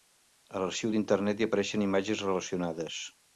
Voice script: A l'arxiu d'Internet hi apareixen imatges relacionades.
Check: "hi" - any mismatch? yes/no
no